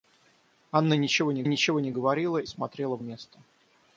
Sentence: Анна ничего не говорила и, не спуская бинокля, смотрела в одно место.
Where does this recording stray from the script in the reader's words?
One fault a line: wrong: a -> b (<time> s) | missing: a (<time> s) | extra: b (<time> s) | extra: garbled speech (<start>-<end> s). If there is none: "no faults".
wrong: говорила и -> ничего (1.4 s)
wrong: спуская бинокля -> говорила и (1.9 s)
missing: одно (3.0 s)